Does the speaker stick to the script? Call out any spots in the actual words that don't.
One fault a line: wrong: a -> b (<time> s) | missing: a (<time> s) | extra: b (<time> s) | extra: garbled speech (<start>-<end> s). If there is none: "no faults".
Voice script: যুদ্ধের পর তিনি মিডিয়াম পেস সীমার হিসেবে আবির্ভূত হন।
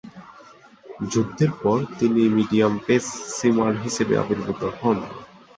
no faults